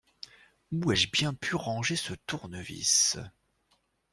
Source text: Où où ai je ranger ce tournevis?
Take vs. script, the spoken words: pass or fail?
fail